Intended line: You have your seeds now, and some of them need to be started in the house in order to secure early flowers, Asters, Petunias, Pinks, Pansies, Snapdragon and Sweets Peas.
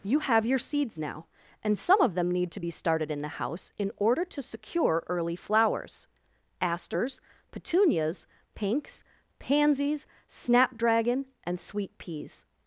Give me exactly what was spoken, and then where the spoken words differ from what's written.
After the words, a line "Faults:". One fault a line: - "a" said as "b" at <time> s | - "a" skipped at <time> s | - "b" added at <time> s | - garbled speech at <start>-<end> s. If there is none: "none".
You have your seeds now, and some of them need to be started in the house in order to secure early flowers, Asters, Petunias, Pinks, Pansies, Snapdragon and Sweet Peas.
Faults:
- "Sweets" said as "Sweet" at 11.6 s